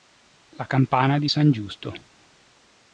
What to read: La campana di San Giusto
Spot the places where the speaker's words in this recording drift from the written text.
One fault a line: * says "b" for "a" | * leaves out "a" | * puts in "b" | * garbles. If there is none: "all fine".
all fine